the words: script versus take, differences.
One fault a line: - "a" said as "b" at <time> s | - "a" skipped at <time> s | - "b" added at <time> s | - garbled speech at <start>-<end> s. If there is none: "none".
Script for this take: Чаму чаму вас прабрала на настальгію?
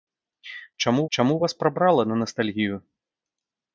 none